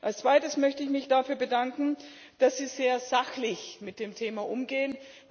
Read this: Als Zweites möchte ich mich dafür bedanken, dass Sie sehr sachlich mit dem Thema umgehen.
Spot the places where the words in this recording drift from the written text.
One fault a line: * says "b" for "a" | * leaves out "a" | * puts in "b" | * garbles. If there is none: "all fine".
all fine